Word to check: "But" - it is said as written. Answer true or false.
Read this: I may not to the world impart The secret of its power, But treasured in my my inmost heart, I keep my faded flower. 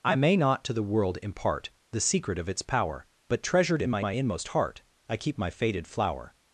true